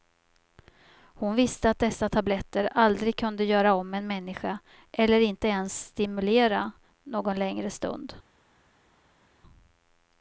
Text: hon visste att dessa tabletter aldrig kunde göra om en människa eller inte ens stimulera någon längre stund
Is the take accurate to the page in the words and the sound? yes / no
yes